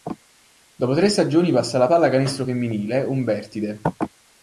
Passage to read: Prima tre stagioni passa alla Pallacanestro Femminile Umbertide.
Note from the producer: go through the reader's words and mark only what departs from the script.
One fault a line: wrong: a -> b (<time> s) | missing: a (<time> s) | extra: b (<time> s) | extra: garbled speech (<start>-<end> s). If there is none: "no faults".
wrong: Prima -> Dopo (0.7 s)